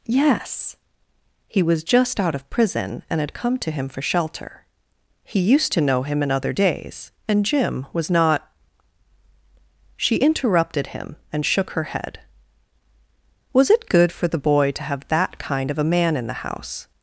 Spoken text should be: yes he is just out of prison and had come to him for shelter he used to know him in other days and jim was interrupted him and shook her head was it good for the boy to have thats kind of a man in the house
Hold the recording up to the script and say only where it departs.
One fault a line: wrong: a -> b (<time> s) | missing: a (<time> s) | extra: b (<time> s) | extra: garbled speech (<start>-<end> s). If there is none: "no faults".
wrong: is -> was (1.6 s)
extra: not she (8.1 s)
wrong: thats -> that (15.1 s)